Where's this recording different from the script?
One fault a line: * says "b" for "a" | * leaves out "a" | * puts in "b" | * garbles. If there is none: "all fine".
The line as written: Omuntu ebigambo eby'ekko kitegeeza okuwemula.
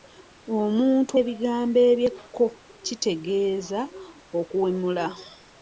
all fine